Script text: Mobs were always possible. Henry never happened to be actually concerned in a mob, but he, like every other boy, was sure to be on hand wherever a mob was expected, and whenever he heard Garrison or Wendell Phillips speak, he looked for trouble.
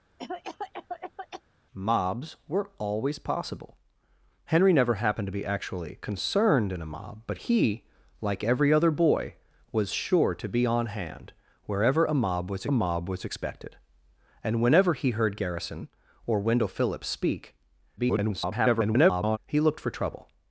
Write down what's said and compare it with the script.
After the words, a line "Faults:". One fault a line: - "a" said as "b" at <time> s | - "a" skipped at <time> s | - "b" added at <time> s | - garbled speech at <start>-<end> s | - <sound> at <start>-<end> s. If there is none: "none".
Mobs were always possible. Henry never happened to be actually concerned in a mob, but he, like every other boy, was sure to be on hand wherever a mob was mob was expected, and whenever he heard Garrison or Wendell Phillips speak, [garbled] he looked for trouble.
Faults:
- cough at 0.2-1.4 s
- "mob was" added at 12.7 s
- garbled speech at 18.0-19.4 s